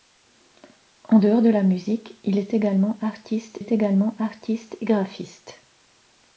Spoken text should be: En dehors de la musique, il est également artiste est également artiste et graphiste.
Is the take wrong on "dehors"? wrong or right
right